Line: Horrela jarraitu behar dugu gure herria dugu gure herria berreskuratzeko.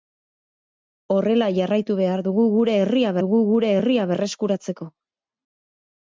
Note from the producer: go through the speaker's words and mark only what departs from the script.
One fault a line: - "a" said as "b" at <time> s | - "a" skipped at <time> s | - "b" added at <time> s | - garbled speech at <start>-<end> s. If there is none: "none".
none